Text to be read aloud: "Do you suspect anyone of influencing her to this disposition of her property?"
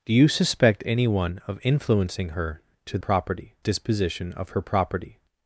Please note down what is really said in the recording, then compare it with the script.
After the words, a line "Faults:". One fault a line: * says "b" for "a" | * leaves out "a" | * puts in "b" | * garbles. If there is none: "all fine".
"Do you suspect anyone of influencing her to property disposition of her property?"
Faults:
* says "property" for "this"